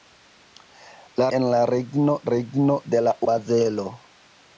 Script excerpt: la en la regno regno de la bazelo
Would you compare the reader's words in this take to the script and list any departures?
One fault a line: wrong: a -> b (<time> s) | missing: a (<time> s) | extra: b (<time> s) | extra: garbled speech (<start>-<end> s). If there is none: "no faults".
no faults